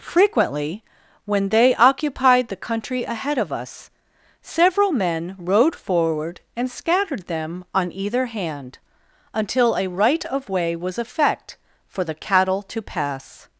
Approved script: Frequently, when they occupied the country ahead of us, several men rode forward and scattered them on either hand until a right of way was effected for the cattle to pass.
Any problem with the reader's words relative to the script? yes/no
yes